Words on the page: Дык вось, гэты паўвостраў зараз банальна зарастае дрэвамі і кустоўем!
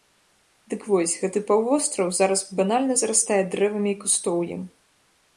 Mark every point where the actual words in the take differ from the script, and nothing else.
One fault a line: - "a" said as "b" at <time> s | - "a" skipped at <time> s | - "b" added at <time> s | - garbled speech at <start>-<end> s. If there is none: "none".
none